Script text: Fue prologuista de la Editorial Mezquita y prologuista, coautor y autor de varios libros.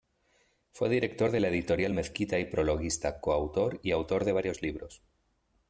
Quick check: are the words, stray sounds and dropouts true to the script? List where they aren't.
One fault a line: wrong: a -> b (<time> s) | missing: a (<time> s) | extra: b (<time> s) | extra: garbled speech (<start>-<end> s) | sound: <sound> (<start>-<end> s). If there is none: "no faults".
wrong: prologuista -> director (0.9 s)